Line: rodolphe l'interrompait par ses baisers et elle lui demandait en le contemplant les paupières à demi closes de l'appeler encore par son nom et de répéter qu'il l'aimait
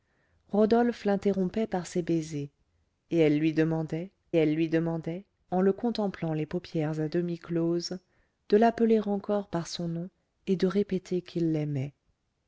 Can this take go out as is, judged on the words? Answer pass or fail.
fail